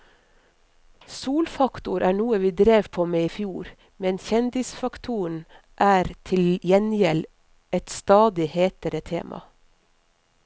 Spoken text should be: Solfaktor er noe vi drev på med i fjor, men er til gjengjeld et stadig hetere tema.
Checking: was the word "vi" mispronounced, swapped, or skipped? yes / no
no